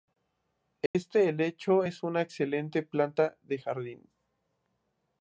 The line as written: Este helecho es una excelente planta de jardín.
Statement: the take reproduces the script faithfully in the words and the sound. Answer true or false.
false